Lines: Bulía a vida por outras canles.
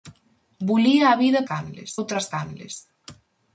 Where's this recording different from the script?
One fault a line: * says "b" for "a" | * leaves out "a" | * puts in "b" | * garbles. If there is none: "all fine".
* says "canles" for "por"